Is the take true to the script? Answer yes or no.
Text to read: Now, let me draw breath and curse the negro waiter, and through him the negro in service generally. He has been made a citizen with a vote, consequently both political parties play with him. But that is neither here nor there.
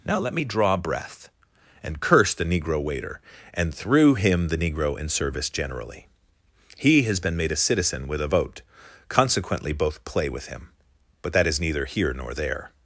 no